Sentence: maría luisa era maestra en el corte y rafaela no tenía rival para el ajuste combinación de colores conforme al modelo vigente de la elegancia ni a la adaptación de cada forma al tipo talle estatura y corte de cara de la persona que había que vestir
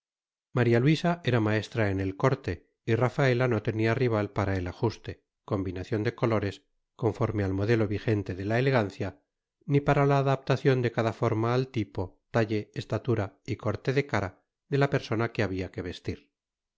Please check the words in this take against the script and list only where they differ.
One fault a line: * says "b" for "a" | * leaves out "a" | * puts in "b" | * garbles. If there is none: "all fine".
* says "para" for "a"